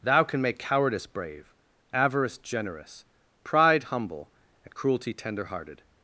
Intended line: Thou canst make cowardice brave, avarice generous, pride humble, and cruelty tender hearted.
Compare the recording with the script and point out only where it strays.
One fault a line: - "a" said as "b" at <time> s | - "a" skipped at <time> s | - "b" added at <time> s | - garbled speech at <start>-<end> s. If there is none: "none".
- "canst" said as "can" at 0.2 s